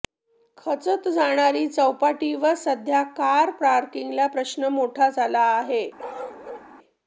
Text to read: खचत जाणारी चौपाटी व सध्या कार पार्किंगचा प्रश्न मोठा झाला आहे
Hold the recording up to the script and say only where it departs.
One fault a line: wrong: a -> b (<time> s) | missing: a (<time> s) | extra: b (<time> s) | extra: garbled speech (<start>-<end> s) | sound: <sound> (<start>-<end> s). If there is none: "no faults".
sound: bark (6.0-6.7 s)